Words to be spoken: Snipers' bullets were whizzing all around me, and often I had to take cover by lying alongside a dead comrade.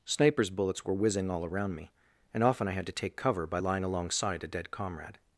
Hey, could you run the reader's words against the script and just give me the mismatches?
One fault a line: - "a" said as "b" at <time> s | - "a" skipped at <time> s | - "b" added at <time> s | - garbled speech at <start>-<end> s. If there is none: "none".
none